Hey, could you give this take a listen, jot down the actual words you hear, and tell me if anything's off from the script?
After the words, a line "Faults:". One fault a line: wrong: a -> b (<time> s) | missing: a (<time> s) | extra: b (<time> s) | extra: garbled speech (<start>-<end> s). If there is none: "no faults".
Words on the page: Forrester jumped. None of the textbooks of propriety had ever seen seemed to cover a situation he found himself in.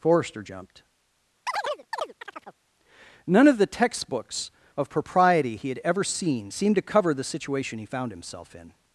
Forrester jumped. None of the textbooks of propriety he had ever seen seemed to cover the situation he found himself in.
Faults:
extra: he (5.6 s)
wrong: a -> the (7.1 s)